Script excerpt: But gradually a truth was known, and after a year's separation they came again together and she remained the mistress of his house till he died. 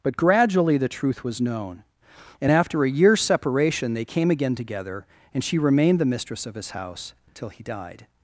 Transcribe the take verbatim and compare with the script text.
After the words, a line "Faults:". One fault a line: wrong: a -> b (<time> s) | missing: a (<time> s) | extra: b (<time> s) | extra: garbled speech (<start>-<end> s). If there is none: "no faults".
But gradually the truth was known, and after a year's separation they came again together and she remained the mistress of his house till he died.
Faults:
wrong: a -> the (0.8 s)